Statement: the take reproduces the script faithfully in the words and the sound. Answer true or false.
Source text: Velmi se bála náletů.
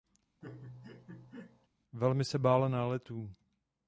false